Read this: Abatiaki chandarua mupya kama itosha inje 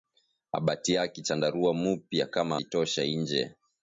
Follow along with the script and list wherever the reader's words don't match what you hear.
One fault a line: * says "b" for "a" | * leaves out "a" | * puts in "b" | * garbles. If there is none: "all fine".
all fine